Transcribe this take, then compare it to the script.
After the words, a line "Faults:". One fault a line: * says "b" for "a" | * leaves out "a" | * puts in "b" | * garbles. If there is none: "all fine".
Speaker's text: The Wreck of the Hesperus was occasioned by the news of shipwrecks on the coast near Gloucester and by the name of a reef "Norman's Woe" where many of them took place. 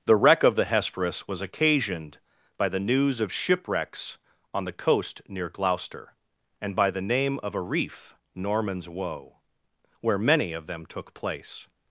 The Wreck of the Hesperus was occasioned by the news of shipwrecks on the coast near Gloucester and by the name of a reef "Norman's Woe" where many of them took place.
Faults:
all fine